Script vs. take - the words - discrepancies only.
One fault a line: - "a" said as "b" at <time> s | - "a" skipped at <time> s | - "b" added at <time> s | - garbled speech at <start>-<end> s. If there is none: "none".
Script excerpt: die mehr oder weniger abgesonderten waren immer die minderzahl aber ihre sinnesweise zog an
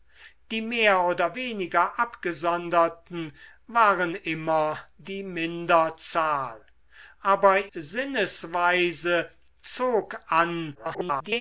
- "ihre" skipped at 7.7 s
- garbled speech at 10.7-11.4 s